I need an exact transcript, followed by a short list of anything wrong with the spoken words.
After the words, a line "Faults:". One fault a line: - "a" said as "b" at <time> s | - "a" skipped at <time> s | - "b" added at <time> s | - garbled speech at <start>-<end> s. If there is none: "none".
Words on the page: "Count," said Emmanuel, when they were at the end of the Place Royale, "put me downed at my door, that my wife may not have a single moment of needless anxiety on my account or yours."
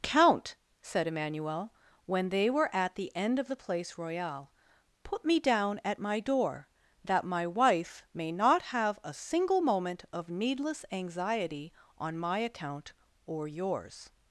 "Count," said Emmanuel, when they were at the end of the Place Royale, "put me down at my door, that my wife may not have a single moment of needless anxiety on my account or yours."
Faults:
- "downed" said as "down" at 5.4 s